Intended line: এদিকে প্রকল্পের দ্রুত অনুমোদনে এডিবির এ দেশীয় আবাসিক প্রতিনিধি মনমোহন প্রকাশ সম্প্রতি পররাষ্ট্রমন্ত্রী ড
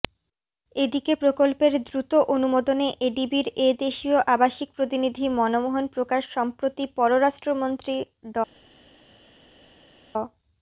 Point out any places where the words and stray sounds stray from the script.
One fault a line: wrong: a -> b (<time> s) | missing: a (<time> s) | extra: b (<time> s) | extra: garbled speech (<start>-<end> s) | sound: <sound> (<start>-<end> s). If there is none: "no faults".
no faults